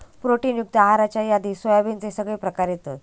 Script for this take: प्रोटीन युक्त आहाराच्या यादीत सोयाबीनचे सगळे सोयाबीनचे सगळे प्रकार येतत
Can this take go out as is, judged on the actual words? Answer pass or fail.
fail